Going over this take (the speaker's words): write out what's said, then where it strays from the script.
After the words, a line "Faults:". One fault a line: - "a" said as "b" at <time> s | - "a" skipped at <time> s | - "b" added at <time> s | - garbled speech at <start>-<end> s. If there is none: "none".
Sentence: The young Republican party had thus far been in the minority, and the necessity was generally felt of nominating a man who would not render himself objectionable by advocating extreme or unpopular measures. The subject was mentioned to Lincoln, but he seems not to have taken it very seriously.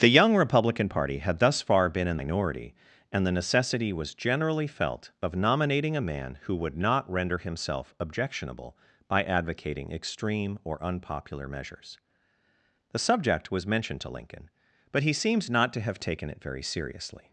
The young Republican party had thus far been in minority, and the necessity was generally felt of nominating a man who would not render himself objectionable by advocating extreme or unpopular measures. The subject was mentioned to Lincoln, but he seems not to have taken it very seriously.
Faults:
- "the" skipped at 2.2 s